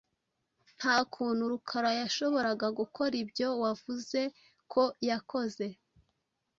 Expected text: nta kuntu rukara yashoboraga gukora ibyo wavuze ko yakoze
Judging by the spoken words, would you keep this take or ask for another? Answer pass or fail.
pass